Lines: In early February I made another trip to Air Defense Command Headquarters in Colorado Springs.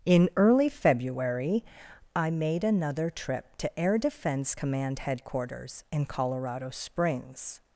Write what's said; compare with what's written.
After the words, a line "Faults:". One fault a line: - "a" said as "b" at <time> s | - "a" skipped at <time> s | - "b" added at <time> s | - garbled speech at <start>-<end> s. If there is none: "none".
In early February I made another trip to Air Defense Command Headquarters in Colorado Springs.
Faults:
none